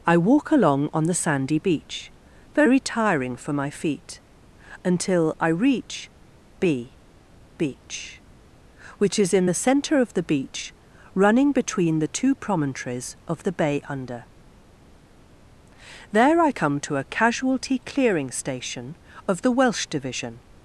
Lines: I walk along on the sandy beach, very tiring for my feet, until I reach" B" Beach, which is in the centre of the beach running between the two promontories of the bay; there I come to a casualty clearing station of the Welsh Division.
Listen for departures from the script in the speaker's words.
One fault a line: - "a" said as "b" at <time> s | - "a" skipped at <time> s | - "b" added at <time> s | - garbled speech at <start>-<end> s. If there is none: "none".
- "under" added at 13.9 s